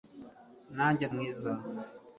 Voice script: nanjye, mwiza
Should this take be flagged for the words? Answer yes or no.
no